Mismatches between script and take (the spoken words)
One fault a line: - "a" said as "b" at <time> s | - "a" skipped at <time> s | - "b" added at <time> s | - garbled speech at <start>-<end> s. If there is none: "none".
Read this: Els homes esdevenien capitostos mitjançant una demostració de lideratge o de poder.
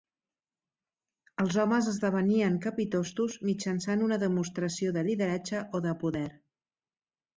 none